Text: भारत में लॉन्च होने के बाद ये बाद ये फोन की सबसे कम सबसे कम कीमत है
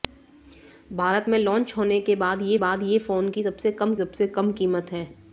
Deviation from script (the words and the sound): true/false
false